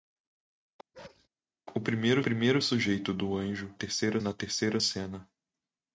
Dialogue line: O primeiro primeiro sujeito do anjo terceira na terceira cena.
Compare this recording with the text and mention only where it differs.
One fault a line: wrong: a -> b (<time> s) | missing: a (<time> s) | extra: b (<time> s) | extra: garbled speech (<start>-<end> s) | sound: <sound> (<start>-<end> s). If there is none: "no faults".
sound: bark (0.9-1.3 s)